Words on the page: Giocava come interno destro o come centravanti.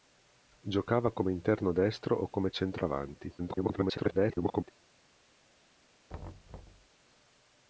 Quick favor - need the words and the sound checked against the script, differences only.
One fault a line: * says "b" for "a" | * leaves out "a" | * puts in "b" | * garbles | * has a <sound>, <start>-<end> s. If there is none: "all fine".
* garbles
* has a thud, 6.1-6.9 s